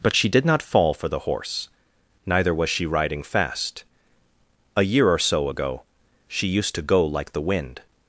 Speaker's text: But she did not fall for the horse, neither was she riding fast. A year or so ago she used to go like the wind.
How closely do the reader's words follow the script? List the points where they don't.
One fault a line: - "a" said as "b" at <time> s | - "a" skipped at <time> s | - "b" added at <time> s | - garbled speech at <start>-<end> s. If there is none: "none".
none